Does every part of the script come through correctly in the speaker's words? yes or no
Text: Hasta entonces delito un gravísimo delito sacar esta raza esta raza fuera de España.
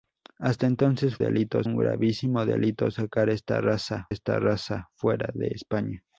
yes